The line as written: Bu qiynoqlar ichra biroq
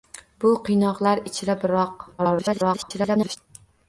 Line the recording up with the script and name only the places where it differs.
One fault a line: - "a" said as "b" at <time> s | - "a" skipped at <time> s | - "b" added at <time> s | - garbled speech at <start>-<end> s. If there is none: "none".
- garbled speech at 2.2-3.4 s